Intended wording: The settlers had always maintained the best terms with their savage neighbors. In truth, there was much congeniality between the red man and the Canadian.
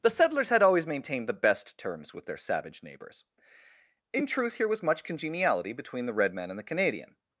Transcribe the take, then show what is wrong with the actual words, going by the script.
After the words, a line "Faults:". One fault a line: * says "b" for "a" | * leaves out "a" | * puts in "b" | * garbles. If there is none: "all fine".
The settlers had always maintained the best terms with their savage neighbors. In truth, here was much congeniality between the red man and the Canadian.
Faults:
* says "here" for "there"